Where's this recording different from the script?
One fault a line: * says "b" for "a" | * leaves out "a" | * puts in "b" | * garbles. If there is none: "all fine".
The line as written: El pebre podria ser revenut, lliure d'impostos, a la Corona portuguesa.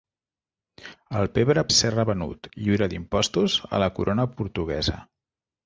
* leaves out "podria"